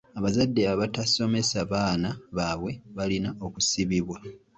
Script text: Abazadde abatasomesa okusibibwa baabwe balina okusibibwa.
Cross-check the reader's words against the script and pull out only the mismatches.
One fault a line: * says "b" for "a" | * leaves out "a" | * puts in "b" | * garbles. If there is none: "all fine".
* says "baana" for "okusibibwa"